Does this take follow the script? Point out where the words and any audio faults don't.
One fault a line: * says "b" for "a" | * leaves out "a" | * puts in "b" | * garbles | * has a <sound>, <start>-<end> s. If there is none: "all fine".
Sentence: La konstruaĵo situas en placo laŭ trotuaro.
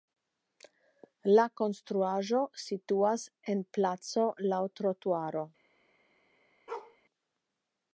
* has a bark, 6.7-7.0 s